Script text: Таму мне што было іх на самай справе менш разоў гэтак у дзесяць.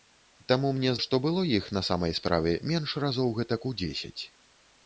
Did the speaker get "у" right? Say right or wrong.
right